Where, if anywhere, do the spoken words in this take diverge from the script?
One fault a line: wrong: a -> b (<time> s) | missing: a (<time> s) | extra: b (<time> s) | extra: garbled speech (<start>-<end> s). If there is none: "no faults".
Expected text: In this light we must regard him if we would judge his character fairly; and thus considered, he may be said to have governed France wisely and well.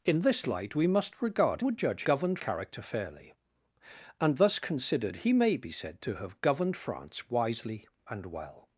missing: him if we (1.6 s)
wrong: his -> governed (2.0 s)